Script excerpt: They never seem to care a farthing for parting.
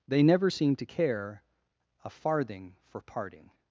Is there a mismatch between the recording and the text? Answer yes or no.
no